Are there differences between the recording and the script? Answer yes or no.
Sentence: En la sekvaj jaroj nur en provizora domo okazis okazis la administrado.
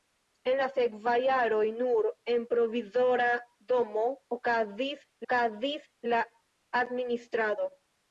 no